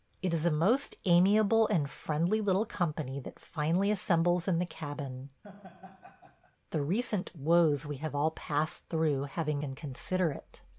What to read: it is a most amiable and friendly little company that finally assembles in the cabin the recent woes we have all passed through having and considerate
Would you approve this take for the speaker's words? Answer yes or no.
yes